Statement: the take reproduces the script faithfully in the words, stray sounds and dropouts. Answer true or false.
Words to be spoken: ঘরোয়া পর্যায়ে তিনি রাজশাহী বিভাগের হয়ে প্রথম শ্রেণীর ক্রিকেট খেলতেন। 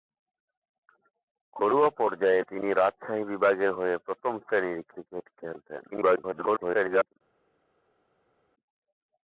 false